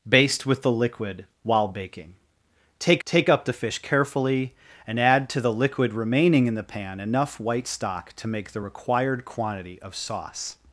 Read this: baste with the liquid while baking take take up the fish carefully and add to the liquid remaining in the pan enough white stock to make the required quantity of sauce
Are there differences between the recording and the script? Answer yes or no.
no